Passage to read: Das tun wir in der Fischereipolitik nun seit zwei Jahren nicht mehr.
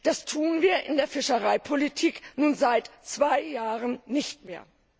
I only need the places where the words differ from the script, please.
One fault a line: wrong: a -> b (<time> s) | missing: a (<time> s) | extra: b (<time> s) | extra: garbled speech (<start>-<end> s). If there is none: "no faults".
no faults